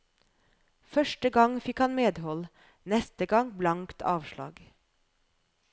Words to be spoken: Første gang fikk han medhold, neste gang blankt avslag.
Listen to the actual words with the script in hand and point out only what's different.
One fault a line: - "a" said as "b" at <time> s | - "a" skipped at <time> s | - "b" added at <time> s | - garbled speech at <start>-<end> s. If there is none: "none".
none